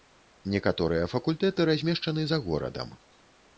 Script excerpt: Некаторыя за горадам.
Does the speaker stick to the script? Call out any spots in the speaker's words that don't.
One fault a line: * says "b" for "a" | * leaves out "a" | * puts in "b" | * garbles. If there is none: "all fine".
* puts in "факультэты размешчаны"